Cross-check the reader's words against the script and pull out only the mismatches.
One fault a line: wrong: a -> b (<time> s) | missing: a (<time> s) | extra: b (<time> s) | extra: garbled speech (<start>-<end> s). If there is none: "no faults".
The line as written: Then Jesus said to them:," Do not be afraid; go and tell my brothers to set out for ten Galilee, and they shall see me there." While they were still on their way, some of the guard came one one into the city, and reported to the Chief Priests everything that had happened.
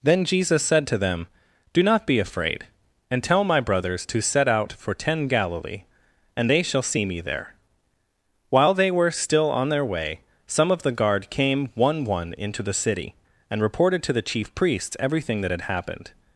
missing: go (2.6 s)